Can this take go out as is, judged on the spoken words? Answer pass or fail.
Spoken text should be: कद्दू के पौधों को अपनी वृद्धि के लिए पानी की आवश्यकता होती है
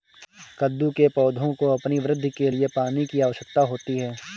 pass